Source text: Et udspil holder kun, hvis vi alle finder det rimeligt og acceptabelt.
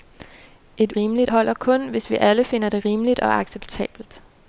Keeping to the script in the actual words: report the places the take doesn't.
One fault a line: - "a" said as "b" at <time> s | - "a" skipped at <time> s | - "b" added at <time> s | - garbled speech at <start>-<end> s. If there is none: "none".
- "udspil" said as "rimeligt" at 1.0 s